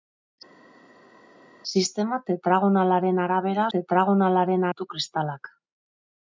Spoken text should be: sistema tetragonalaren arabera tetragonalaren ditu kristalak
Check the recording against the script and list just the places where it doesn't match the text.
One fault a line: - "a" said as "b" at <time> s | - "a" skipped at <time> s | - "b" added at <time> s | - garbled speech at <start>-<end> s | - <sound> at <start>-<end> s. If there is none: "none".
none